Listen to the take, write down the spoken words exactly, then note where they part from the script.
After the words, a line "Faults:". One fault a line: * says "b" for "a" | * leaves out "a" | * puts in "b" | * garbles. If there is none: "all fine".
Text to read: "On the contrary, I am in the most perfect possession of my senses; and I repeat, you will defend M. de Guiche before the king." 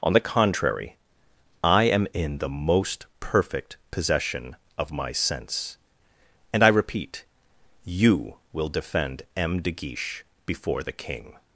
"On the contrary, I am in the most perfect possession of my sense; and I repeat, you will defend M. de Guiche before the king."
Faults:
* says "sense" for "senses"